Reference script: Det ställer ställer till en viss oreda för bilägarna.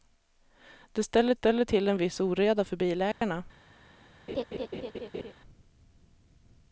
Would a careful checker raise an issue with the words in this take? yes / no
no